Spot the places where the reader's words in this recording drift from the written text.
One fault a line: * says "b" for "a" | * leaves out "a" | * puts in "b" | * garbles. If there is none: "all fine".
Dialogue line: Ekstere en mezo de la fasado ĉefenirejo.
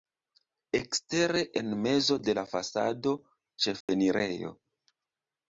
all fine